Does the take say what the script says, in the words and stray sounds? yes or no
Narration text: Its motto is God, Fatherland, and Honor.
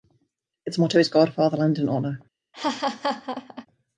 no